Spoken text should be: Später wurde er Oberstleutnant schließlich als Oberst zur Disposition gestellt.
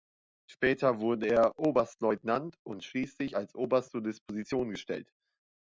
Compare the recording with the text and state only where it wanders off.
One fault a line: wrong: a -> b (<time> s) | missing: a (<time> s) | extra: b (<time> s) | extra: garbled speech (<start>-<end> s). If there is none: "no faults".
extra: und (2.6 s)